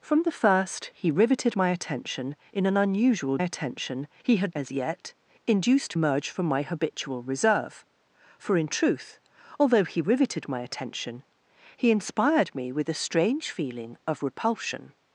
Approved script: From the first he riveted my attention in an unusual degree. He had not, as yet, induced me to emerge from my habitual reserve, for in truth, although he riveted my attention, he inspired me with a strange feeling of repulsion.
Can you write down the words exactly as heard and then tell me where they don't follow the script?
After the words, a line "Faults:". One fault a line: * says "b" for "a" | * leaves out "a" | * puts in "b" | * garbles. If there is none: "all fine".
From the first he riveted my attention in an unusual attention. He had as yet, induced emerge from my habitual reserve, for in truth, although he riveted my attention, he inspired me with a strange feeling of repulsion.
Faults:
* says "attention" for "degree"
* leaves out "not"
* leaves out "me to"